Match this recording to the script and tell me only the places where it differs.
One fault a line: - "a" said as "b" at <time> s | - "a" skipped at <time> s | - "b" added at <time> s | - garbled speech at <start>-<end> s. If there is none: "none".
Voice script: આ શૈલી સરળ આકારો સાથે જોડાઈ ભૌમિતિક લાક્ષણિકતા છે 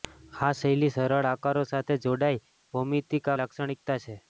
none